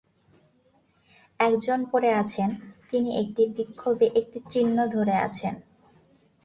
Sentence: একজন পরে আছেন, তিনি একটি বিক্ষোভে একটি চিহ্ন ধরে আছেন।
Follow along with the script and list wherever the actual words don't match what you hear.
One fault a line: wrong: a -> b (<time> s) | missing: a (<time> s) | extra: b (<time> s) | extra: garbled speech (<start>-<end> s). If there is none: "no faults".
no faults